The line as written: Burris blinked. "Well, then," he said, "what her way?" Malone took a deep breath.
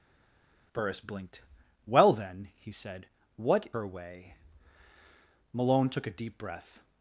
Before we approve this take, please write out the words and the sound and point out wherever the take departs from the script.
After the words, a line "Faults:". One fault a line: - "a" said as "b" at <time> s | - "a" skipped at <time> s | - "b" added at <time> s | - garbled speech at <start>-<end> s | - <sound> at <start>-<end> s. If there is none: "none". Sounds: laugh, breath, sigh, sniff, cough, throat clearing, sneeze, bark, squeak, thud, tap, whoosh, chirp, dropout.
Burris blinked. "Well, then," he said, "what her way?" Malone took a deep breath.
Faults:
none